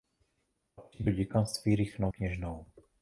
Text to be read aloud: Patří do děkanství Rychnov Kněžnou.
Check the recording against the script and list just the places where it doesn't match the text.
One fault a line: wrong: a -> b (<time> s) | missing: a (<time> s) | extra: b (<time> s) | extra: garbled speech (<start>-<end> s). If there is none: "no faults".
no faults